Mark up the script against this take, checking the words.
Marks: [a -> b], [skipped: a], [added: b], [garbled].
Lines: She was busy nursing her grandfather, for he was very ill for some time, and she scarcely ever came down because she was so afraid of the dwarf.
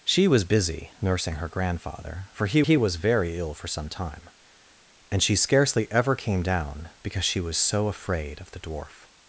She was busy nursing her grandfather, for he [added: he] was very ill for some time, and she scarcely ever came down because she was so afraid of the dwarf.